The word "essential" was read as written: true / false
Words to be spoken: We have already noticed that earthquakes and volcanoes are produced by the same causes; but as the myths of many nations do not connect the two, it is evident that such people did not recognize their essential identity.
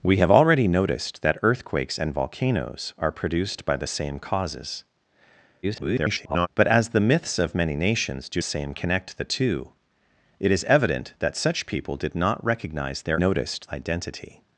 false